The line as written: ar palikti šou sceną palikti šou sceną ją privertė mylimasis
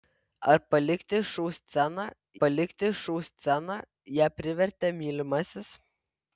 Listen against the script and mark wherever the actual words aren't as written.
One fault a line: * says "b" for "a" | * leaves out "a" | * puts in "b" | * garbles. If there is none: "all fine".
all fine